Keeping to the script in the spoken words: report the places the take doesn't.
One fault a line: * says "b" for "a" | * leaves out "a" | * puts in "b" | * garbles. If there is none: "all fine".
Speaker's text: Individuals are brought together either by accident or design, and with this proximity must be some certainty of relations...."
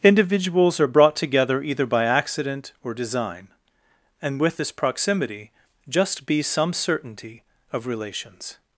* says "just" for "must"